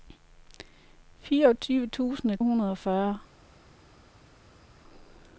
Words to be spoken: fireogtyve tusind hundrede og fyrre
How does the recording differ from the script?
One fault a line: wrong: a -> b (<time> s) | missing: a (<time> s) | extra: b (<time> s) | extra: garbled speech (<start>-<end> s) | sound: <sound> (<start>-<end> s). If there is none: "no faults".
no faults